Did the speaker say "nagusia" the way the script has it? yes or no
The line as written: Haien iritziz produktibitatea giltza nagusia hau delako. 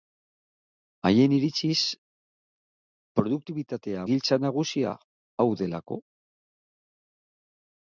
yes